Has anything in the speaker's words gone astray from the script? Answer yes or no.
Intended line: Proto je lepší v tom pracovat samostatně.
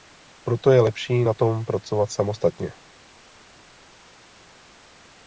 yes